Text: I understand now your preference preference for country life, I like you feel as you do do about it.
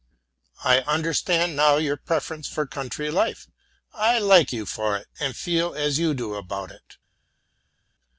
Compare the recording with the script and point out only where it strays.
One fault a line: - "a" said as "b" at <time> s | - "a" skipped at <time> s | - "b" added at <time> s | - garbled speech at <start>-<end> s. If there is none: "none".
- "preference" skipped at 2.5 s
- "for it and" added at 4.6 s
- "do" skipped at 6.3 s